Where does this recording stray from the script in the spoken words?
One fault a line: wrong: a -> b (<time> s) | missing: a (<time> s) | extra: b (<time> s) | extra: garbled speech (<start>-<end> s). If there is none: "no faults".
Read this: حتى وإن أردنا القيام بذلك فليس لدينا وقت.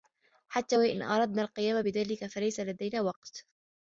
no faults